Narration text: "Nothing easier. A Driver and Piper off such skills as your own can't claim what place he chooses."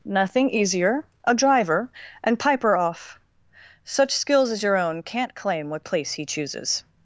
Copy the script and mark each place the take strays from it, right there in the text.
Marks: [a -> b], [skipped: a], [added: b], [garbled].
"Nothing easier. A Driver and Piper off such skills as your own can't claim what place he chooses."